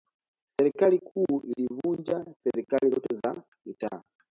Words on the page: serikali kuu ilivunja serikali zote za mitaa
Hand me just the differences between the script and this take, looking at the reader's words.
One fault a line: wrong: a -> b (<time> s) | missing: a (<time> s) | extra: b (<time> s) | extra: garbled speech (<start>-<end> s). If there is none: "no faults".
no faults